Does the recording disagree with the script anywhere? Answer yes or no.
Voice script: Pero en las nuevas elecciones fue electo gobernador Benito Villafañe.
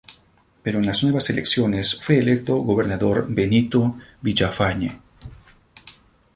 no